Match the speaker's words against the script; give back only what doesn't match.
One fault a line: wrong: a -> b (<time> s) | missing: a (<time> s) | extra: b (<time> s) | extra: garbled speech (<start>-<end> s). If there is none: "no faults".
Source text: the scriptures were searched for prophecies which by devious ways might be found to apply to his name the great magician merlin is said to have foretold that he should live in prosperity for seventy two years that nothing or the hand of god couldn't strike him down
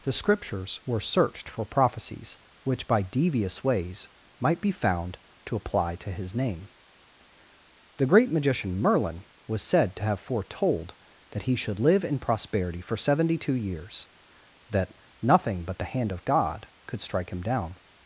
wrong: is -> was (9.5 s)
wrong: or -> but (15.7 s)
wrong: couldn't -> could (16.9 s)